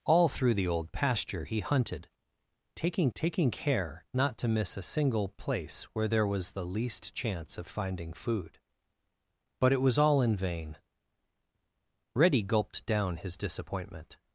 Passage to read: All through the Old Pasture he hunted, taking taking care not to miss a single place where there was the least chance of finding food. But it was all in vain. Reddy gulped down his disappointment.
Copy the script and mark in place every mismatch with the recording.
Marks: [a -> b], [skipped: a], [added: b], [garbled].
All through the Old Pasture he hunted, taking taking care not to miss a single place where there was the least chance of finding food. But it was all in vain. Reddy gulped down his disappointment.